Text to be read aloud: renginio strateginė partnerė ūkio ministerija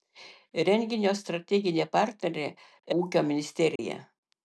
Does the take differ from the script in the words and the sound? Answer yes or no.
yes